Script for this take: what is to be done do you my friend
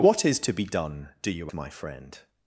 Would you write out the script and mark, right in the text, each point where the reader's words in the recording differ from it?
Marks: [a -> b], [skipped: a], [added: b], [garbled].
what is to be done do you my friend